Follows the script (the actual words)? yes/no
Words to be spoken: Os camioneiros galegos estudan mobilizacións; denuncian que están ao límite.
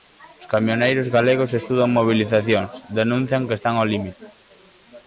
yes